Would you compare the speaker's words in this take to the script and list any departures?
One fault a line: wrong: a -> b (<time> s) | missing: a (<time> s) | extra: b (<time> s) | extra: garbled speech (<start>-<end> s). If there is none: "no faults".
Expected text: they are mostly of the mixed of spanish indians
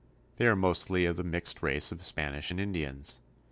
extra: race (1.6 s)
extra: and (2.5 s)